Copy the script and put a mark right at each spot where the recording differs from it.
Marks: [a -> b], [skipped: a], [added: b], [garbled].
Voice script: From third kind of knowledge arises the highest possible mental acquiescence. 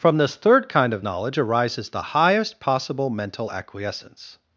From [added: this] third kind of knowledge arises the highest possible mental acquiescence.